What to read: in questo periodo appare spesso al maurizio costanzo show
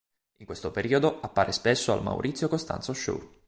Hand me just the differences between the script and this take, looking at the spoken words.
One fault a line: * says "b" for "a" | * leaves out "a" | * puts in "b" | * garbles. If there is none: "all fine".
all fine